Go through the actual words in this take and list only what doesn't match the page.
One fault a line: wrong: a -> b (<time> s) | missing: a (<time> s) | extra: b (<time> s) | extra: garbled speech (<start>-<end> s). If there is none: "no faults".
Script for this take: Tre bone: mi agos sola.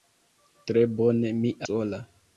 missing: agos (1.6 s)